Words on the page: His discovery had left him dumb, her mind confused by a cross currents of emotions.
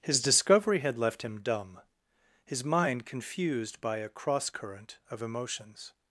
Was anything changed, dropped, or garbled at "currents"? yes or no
yes